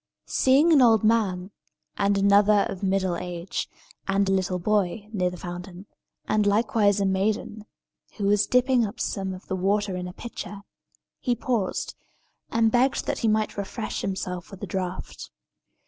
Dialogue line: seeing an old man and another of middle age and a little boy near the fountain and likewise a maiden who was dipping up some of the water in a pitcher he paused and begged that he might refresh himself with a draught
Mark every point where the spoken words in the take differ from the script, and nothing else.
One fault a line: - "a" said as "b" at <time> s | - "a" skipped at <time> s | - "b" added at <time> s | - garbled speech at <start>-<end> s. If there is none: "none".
none